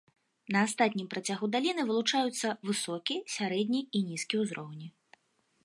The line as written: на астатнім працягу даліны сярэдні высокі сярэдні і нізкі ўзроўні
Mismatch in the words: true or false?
true